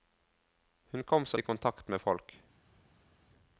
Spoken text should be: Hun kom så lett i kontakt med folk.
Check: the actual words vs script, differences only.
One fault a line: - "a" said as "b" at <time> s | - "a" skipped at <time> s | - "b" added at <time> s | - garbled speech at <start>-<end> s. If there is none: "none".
- "lett" skipped at 1.4 s